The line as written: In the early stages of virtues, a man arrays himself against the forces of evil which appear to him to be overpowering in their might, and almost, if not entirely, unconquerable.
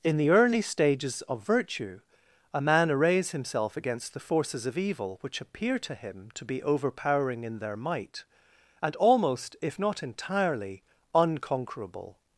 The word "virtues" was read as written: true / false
false